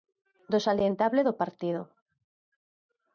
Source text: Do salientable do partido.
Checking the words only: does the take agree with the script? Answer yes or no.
yes